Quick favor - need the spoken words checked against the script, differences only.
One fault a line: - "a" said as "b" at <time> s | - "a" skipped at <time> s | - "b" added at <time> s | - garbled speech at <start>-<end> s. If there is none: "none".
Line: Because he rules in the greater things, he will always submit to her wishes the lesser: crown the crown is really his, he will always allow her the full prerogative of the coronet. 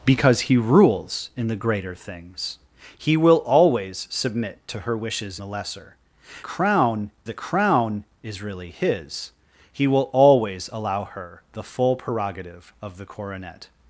none